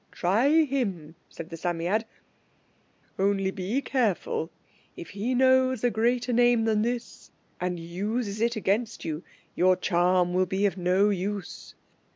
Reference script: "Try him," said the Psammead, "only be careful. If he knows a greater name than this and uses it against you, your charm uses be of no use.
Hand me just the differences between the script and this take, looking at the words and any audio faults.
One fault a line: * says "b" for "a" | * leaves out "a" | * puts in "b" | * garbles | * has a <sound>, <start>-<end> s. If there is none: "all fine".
* says "will" for "uses"